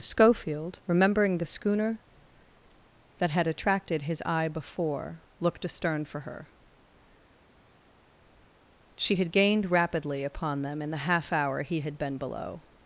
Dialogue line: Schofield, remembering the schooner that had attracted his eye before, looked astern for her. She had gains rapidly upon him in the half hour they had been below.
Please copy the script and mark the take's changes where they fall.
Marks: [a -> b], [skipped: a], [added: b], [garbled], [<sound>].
Schofield, remembering the schooner that had attracted his eye before, looked astern for her. She had [gains -> gained] rapidly upon [him -> them] in the half hour [they -> he] had been below.